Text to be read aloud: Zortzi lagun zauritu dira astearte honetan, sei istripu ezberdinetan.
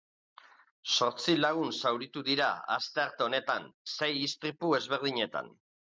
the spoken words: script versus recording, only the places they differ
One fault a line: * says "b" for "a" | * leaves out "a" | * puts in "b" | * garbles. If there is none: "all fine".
all fine